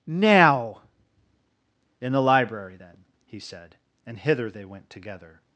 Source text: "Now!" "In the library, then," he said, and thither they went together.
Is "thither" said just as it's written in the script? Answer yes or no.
no